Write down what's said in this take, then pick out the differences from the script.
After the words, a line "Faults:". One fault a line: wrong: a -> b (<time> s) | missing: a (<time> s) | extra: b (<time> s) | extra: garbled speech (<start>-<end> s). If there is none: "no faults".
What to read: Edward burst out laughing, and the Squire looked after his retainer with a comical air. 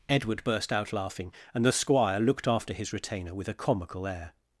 Edward burst out laughing, and the Squire looked after his retainer with a comical air.
Faults:
no faults